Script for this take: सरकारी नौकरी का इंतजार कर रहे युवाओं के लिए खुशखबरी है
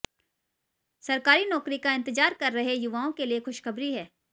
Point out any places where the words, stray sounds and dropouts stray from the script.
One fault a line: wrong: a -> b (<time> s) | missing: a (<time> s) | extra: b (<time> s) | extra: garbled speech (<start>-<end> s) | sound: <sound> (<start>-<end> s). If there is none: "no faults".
no faults